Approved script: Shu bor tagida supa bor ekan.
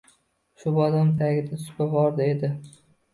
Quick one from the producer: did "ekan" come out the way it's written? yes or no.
no